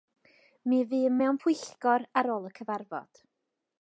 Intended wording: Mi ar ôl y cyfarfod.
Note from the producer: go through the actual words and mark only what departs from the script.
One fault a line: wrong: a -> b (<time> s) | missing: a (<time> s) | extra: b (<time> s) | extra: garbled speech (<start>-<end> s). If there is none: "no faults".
extra: fûm mewn pwyllgor (0.9 s)